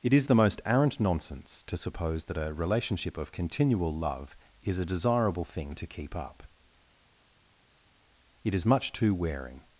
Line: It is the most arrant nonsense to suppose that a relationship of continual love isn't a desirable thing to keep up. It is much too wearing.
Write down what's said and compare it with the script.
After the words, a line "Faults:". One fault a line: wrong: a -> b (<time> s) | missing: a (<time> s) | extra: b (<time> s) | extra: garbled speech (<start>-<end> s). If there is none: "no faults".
It is the most arrant nonsense to suppose that a relationship of continual love is a desirable thing to keep up. It is much too wearing.
Faults:
wrong: isn't -> is (4.6 s)